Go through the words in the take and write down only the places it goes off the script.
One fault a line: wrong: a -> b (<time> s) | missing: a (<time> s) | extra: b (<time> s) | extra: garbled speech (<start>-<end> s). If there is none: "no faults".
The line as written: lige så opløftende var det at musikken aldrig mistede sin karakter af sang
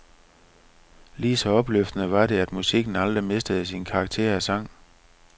no faults